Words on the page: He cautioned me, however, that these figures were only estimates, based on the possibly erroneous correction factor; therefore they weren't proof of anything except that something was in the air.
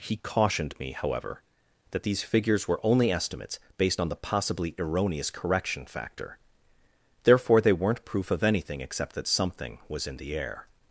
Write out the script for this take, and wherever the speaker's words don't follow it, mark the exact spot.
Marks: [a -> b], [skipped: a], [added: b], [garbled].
He cautioned me, however, that these figures were only estimates, based on the possibly erroneous correction factor; therefore they weren't proof of anything except that something was in the air.